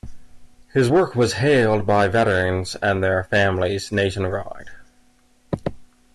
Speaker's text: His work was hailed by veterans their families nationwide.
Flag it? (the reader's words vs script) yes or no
yes